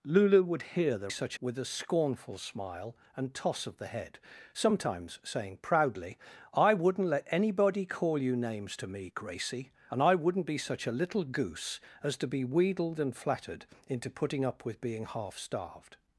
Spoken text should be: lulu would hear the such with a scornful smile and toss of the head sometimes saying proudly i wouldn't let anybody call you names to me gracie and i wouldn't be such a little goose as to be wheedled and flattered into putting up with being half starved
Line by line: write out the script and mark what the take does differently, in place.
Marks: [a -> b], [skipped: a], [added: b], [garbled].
lulu would hear the such with a scornful smile and toss of the head sometimes saying proudly i wouldn't let anybody call you names to me gracie and i wouldn't be such a little goose as to be wheedled and flattered into putting up with being half starved